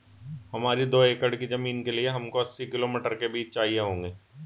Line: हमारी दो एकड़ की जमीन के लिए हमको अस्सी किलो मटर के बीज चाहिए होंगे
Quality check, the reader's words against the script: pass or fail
pass